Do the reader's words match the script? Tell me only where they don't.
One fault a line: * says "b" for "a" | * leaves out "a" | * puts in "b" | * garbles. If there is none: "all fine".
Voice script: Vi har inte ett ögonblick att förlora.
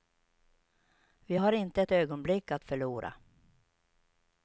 all fine